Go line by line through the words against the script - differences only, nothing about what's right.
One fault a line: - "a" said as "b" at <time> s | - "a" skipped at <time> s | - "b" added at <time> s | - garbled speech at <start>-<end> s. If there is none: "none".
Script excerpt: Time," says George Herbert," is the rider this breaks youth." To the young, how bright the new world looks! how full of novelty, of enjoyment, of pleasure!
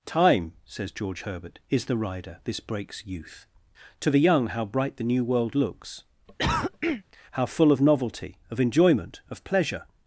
none